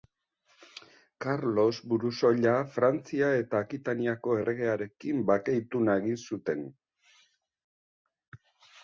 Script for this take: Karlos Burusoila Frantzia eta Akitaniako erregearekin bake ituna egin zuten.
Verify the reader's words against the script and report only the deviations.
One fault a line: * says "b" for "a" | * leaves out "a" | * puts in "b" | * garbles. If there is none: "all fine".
all fine